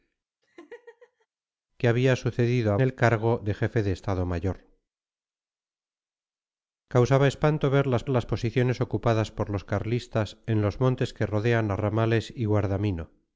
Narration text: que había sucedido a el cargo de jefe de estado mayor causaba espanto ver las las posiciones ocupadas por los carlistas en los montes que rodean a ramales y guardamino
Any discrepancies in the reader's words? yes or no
no